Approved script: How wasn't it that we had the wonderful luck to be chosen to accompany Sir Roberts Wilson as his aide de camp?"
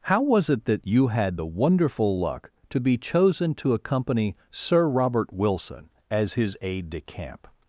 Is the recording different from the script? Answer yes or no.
yes